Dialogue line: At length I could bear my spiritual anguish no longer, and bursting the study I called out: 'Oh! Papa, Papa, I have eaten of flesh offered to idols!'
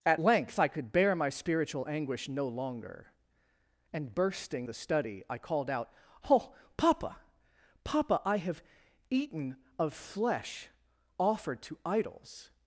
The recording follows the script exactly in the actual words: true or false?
true